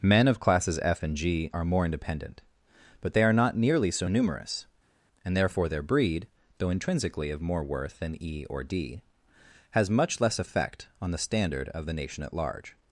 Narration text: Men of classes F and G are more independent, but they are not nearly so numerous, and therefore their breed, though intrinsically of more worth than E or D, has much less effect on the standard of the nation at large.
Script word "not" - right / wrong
right